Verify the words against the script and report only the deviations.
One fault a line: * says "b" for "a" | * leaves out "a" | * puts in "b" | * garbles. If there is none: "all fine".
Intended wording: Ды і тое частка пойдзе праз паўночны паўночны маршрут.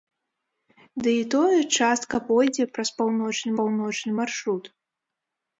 all fine